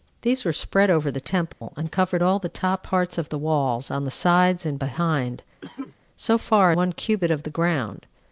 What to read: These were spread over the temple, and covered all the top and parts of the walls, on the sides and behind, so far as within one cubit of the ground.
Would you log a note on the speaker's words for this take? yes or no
yes